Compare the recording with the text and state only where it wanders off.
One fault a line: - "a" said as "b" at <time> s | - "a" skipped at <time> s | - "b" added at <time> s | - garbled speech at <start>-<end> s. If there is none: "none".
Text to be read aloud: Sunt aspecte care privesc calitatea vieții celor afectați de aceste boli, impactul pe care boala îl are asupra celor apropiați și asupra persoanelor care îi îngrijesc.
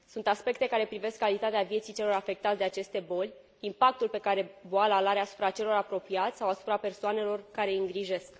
- "și" said as "sau" at 6.4 s